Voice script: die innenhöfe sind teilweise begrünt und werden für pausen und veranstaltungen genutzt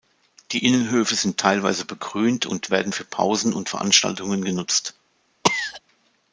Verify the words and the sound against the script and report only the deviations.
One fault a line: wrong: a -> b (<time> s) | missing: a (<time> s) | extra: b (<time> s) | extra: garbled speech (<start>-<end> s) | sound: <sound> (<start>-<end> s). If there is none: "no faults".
sound: cough (5.4-5.8 s)